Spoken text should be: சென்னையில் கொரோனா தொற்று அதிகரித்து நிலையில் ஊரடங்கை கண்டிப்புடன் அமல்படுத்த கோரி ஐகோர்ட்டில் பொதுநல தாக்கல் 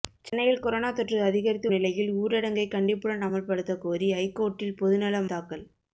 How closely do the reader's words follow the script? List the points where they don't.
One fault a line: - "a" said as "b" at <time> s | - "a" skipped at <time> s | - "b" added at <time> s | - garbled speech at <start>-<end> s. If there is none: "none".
none